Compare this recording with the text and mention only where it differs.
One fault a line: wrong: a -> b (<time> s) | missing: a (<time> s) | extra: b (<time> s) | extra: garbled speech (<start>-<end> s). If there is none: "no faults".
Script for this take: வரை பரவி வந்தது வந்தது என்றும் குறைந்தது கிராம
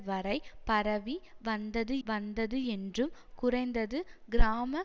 no faults